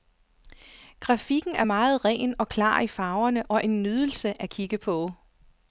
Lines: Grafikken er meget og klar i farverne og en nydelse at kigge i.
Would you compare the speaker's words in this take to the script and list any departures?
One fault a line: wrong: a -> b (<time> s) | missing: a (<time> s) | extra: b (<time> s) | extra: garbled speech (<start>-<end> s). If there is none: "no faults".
extra: ren (2.0 s)
wrong: i -> på (4.8 s)